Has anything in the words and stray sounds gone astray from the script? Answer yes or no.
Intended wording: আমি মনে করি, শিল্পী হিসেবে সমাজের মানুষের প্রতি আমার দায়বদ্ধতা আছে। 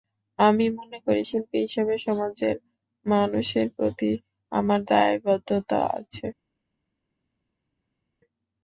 no